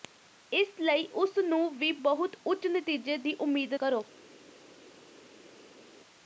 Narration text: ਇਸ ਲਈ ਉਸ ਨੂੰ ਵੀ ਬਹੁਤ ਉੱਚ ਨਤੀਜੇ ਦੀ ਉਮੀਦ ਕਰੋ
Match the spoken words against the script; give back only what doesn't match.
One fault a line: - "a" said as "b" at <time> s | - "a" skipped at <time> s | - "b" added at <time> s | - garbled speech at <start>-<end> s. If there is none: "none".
none